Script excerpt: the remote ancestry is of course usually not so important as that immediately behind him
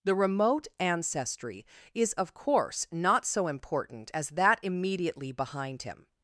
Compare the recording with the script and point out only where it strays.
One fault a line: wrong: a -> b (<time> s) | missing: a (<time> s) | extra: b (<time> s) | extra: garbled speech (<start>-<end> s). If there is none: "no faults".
missing: usually (2.9 s)